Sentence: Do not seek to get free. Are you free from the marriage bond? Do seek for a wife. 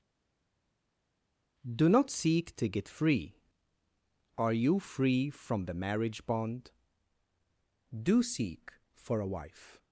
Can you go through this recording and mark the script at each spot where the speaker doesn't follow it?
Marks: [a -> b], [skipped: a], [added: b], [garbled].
Do not seek to get free. Are you free from the marriage bond? Do seek for a wife.